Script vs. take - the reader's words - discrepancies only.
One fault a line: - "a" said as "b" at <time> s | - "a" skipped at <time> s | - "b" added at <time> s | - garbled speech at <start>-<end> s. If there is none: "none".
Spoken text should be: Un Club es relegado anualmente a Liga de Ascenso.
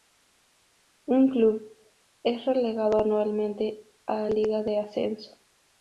none